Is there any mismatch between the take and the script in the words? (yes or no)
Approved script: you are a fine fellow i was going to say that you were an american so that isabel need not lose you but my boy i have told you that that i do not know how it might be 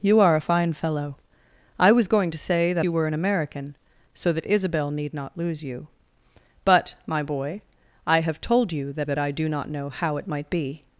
no